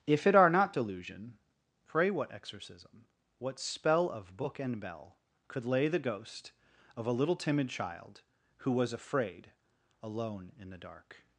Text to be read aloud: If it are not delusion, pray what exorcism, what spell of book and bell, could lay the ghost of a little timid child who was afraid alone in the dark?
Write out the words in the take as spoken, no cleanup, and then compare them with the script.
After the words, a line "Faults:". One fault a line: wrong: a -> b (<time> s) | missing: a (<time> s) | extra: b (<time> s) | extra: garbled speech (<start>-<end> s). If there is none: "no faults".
If it are not delusion, pray what exorcism, what spell of book and bell, could lay the ghost of a little timid child who was afraid alone in the dark?
Faults:
no faults